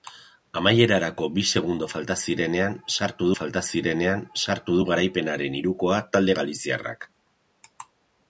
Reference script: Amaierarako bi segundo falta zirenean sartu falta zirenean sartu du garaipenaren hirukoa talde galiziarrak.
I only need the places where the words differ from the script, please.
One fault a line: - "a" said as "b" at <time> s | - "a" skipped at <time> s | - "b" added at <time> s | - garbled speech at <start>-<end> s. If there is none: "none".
none